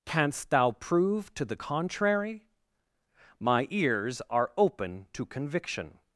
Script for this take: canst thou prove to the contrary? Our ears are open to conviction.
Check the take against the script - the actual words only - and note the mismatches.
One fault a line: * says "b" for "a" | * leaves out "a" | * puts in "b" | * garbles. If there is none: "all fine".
* says "My" for "Our"